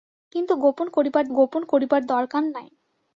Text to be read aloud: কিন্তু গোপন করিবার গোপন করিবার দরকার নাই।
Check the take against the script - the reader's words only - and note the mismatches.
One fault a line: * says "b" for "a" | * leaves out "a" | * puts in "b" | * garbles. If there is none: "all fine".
all fine